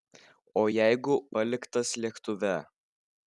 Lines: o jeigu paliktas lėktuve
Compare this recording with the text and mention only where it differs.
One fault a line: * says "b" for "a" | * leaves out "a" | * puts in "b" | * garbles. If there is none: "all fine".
all fine